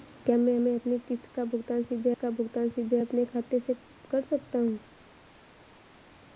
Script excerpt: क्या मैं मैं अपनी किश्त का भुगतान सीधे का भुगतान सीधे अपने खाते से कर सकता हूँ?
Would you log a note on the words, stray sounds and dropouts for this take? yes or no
no